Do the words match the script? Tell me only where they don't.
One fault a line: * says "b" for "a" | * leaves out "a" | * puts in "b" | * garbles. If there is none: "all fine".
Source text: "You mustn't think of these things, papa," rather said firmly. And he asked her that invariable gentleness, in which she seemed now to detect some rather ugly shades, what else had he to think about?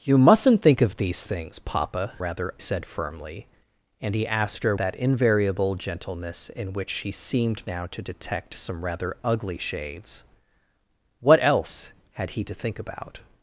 all fine